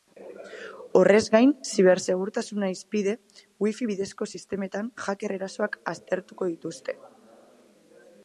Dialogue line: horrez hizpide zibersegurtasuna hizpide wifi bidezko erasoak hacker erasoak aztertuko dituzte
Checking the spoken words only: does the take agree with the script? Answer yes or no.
no